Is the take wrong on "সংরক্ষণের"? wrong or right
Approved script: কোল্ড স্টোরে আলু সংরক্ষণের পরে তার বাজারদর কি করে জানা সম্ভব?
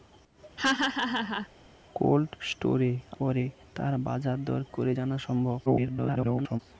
wrong